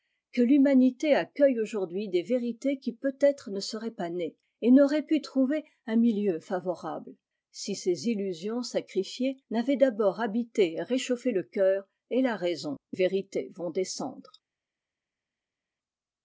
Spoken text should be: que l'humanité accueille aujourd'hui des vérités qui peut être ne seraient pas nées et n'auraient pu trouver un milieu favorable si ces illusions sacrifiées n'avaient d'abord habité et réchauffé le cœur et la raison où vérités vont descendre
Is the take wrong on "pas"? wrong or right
right